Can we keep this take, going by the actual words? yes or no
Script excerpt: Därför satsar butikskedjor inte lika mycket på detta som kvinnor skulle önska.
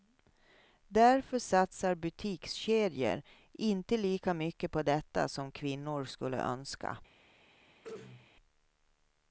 yes